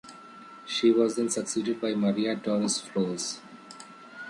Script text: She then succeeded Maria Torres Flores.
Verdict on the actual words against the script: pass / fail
fail